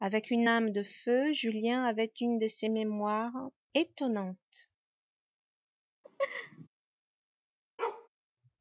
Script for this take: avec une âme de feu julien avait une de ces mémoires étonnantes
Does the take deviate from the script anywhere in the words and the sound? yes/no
yes